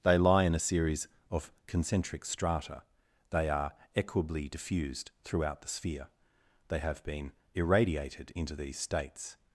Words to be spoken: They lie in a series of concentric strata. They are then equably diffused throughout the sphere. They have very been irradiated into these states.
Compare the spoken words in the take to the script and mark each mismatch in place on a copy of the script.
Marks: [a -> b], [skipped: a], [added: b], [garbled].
They lie in a series of concentric strata. They are [skipped: then] equably diffused throughout the sphere. They have [skipped: very] been irradiated into these states.